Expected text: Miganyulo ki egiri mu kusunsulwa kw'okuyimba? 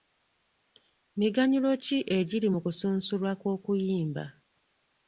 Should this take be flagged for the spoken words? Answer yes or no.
no